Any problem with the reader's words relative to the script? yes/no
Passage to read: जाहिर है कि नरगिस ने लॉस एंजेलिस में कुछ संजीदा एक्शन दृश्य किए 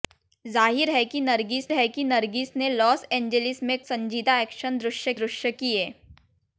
yes